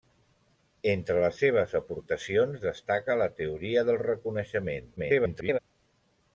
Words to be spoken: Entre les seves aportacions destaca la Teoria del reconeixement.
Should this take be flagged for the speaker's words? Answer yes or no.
yes